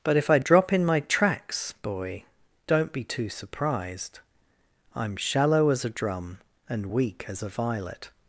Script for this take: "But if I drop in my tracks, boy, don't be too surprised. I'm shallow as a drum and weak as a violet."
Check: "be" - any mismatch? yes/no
no